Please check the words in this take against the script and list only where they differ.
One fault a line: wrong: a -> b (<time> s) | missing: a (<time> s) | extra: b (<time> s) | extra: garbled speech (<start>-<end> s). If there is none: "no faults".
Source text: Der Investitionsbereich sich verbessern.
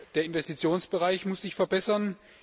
extra: muss (1.2 s)